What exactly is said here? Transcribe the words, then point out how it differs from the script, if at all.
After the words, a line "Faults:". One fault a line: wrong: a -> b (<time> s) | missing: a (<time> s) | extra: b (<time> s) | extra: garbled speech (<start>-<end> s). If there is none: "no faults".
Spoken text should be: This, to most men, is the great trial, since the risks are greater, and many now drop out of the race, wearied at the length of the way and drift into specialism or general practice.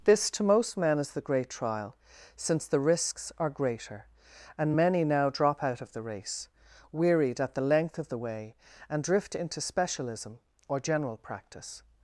This, to most men, is the great trial, since the risks are greater, and many now drop out of the race, wearied at the length of the way and drift into specialism or general practice.
Faults:
no faults